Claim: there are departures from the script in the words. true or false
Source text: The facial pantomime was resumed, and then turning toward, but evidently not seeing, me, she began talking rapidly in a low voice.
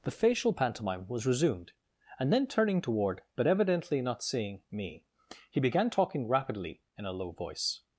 true